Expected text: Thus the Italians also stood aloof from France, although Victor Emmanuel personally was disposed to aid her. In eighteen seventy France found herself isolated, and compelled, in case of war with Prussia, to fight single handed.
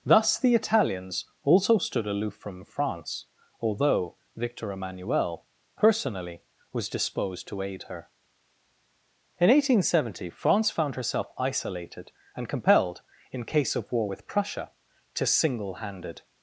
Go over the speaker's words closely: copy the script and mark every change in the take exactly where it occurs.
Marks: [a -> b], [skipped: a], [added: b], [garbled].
Thus the Italians also stood aloof from France, although Victor Emmanuel personally was disposed to aid her. In eighteen seventy France found herself isolated, and compelled, in case of war with Prussia, to [skipped: fight] single handed.